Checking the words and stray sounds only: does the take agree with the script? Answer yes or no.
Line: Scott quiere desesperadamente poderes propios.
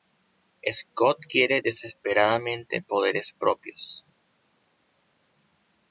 yes